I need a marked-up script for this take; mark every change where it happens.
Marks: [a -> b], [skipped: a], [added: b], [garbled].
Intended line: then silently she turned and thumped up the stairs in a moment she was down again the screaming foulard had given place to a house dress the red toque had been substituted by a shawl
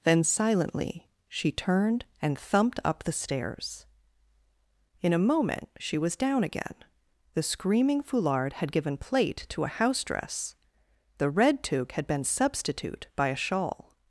then silently she turned and thumped up the stairs in a moment she was down again the screaming foulard had given [place -> plate] to a house dress the red toque had been [substituted -> substitute] by a shawl